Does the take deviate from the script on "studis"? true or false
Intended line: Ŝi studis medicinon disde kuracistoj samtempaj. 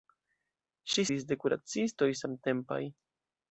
true